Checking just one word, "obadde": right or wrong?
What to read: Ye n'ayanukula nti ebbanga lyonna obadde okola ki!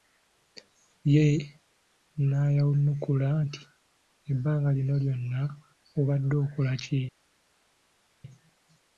right